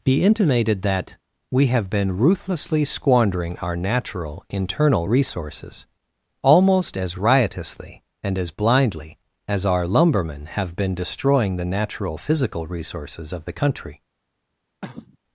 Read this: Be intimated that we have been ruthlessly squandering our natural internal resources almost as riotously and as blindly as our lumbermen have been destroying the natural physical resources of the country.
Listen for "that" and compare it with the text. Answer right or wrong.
right